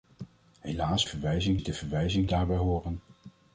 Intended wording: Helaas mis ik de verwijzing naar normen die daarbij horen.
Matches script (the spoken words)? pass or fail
fail